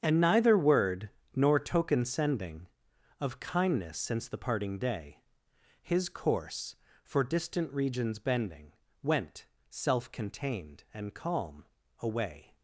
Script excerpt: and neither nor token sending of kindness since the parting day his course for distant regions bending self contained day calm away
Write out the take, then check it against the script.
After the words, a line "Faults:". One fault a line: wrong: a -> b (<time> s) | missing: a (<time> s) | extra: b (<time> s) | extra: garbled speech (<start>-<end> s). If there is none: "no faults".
and neither word nor token sending of kindness since the parting day his course for distant regions bending went self contained and calm away
Faults:
extra: word (0.6 s)
extra: went (9.0 s)
wrong: day -> and (10.9 s)